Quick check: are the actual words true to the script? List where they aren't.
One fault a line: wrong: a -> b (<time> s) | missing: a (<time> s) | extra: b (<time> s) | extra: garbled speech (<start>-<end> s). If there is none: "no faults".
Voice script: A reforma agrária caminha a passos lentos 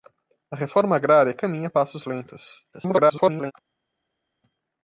extra: garbled speech (2.7-3.5 s)